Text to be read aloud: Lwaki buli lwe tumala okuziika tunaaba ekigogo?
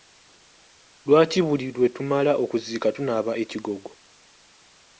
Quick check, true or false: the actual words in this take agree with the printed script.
true